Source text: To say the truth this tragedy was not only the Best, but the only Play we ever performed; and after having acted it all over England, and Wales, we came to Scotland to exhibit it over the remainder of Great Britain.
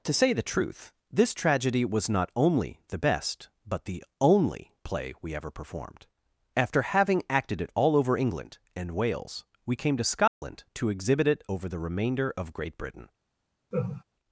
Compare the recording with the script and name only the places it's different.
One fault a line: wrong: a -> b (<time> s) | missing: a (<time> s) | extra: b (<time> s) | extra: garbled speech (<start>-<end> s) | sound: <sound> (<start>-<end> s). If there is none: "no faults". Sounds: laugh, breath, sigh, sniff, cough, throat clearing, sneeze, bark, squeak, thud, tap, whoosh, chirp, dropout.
missing: and (6.1 s)
sound: dropout (10.3-10.4 s)
sound: laugh (13.7-14.0 s)